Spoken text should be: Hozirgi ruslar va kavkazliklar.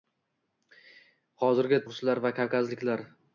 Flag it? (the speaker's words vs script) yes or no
no